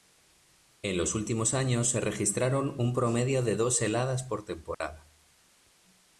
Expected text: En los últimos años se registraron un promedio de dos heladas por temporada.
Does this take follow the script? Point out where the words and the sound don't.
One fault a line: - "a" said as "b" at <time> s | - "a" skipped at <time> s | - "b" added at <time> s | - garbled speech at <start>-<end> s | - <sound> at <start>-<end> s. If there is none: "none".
- dropout at 4.7-4.8 s